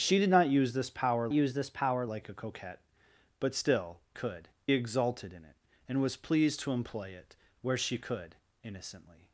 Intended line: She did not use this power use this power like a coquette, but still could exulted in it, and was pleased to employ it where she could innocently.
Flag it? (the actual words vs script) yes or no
no